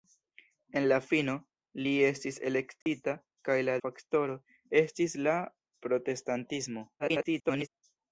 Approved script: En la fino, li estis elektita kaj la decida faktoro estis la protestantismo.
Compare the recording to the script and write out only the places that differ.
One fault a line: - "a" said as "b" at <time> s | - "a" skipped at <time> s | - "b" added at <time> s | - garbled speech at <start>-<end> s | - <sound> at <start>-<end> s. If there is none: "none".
- dropout at 2.8-2.9 s
- "decida" skipped at 3.8 s
- garbled speech at 7.0-7.7 s